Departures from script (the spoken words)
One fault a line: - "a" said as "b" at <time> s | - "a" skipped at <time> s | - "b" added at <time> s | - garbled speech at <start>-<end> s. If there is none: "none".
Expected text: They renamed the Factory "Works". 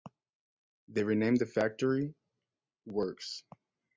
none